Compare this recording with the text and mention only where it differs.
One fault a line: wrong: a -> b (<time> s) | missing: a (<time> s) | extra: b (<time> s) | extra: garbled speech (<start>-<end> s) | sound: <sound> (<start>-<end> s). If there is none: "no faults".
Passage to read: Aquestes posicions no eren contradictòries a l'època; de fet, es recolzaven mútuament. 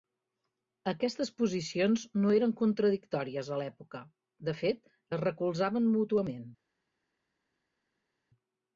no faults